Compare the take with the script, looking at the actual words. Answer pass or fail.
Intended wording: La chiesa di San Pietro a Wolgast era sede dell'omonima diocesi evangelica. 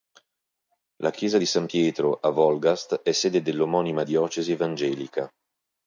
fail